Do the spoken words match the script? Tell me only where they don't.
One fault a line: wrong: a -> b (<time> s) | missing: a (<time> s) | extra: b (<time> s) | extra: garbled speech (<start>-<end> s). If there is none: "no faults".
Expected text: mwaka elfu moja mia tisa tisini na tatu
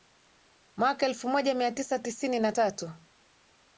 no faults